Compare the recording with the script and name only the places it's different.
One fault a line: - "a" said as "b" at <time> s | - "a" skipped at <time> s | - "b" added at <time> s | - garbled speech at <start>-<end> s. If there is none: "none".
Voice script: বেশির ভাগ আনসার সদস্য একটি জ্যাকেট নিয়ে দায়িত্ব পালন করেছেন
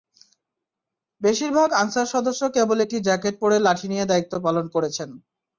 - "কেবল" added at 2.5 s
- "পরে লাঠি" added at 3.4 s